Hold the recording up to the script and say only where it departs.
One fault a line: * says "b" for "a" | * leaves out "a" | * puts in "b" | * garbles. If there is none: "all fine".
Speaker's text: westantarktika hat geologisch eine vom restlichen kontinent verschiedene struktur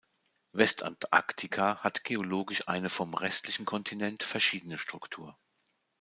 all fine